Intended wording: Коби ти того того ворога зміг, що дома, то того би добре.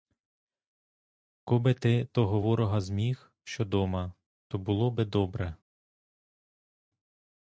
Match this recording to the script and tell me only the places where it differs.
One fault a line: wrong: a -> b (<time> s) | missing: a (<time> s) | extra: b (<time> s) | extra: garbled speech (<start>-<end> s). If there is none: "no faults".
missing: того (2.4 s)
wrong: того -> було (4.6 s)